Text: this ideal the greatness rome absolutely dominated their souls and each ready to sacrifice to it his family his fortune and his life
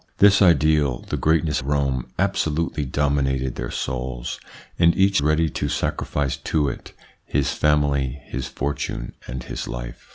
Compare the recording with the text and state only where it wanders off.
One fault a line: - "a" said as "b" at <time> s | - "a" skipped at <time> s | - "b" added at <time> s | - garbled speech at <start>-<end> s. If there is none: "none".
none